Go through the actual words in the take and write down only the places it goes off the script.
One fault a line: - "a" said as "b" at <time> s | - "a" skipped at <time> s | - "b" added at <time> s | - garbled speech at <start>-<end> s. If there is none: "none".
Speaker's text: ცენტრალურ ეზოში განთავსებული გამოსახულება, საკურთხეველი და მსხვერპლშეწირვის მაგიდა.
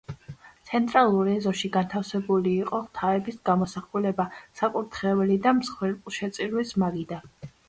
- "იყო ღვთაების" added at 2.6 s